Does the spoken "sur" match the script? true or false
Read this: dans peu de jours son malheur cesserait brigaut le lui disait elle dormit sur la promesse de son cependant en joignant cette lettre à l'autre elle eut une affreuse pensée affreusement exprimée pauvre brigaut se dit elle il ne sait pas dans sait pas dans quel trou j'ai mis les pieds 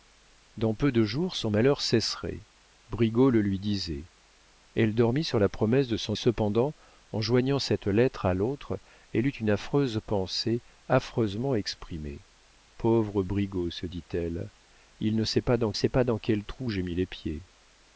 true